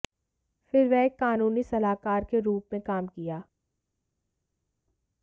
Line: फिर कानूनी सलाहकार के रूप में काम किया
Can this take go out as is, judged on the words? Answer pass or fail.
fail